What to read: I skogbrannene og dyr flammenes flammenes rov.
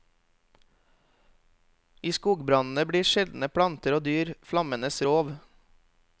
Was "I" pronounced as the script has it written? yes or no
yes